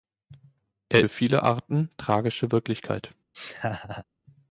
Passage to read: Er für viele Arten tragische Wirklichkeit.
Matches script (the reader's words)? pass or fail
pass